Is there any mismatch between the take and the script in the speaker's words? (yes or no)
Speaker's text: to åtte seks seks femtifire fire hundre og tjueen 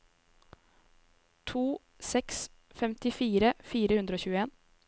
yes